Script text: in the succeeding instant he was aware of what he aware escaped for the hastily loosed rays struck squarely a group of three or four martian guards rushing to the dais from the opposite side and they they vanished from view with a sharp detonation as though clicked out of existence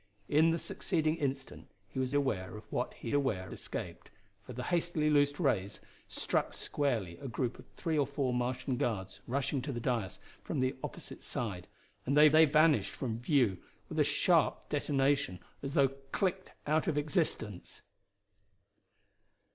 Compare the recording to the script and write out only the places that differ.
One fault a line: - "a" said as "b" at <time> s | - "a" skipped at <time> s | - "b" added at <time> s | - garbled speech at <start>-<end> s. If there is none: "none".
none